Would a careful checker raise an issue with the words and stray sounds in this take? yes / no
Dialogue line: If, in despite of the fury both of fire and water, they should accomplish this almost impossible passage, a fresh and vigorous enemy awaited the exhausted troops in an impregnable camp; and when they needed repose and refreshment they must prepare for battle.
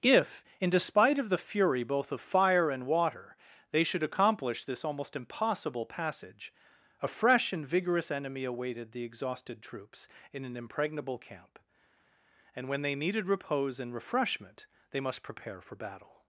no